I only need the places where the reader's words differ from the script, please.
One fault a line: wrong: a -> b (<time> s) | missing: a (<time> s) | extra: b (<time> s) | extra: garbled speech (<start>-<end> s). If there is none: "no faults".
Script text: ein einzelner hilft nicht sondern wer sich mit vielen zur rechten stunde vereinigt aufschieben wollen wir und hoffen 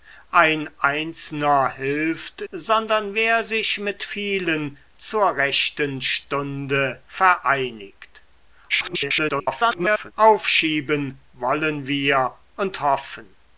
missing: nicht (2.4 s)
extra: garbled speech (8.7-10.1 s)